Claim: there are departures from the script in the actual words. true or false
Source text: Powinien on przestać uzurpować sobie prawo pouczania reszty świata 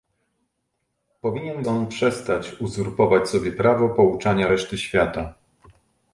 false